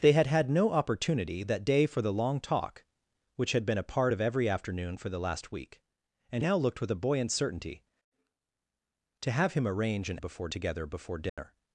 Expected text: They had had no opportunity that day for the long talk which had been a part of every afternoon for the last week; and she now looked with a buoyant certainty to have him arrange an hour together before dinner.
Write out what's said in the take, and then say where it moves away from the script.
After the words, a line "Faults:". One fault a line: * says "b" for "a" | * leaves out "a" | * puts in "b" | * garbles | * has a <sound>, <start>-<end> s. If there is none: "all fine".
They had had no opportunity that day for the long talk which had been a part of every afternoon for the last week; and now looked with a buoyant certainty to have him arrange an before together before dinner.
Faults:
* leaves out "she"
* says "before" for "hour"
* has a dropout, 11.3-11.4 s